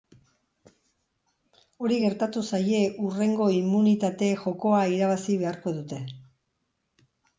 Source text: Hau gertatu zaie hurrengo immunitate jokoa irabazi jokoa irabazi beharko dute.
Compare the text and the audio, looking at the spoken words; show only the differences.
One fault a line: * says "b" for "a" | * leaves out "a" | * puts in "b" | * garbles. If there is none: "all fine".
* says "Hori" for "Hau"
* leaves out "jokoa irabazi"